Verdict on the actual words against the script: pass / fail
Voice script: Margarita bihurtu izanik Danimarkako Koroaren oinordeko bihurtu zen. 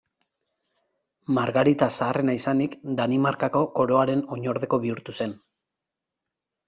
fail